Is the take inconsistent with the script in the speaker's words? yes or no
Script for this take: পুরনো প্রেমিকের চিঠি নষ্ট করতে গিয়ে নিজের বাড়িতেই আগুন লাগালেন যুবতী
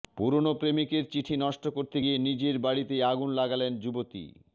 no